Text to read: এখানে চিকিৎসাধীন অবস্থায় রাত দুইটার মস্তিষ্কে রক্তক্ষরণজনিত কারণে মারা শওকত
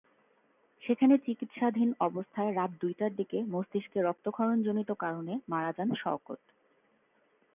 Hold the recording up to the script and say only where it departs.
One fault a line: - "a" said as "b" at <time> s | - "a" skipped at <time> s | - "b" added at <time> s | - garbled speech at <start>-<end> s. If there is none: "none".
- "এখানে" said as "সেখানে" at 0.8 s
- "দিকে" added at 3.1 s
- "যান" added at 5.8 s